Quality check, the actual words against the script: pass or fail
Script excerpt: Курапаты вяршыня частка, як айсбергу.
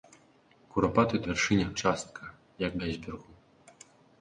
pass